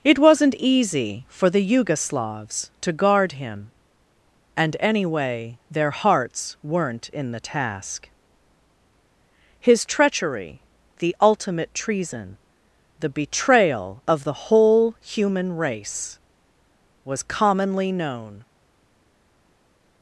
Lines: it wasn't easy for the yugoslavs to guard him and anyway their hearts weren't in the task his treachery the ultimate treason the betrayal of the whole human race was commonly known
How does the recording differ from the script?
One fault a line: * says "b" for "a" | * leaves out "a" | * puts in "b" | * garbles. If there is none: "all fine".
all fine